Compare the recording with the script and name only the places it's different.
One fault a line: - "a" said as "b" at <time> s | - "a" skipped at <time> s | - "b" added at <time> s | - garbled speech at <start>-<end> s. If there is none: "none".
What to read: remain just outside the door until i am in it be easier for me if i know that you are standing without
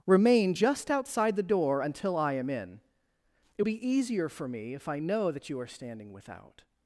none